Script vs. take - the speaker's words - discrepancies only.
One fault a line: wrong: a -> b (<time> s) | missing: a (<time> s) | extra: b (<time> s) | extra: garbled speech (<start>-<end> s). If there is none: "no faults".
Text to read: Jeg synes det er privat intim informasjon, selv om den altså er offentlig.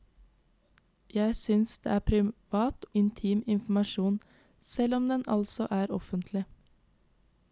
no faults